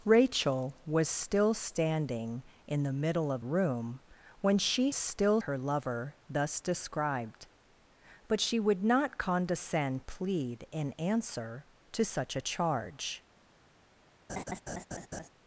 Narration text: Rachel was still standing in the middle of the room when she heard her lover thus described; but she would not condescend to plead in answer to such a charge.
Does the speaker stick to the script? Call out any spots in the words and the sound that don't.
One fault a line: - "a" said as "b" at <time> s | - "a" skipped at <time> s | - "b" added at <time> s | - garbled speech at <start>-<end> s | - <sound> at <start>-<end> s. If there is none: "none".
- "the" skipped at 3.5 s
- "heard" said as "still" at 4.9 s
- "to" skipped at 10.0 s
- laugh at 14.3-15.3 s